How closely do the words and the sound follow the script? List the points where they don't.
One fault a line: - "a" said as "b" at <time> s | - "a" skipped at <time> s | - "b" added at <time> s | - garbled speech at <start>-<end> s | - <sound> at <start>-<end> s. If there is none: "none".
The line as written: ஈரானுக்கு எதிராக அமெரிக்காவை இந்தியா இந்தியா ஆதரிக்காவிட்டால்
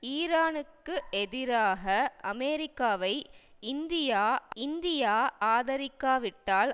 none